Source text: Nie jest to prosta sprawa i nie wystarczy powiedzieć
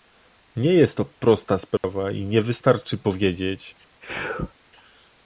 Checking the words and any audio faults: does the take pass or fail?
fail